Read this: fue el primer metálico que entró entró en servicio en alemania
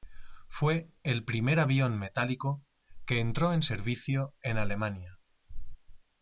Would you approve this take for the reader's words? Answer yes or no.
no